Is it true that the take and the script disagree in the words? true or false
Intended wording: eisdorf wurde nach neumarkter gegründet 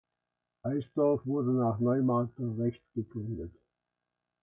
true